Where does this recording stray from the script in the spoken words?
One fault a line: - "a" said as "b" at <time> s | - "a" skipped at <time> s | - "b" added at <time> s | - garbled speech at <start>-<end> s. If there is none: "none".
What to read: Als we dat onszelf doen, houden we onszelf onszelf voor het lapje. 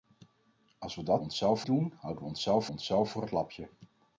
none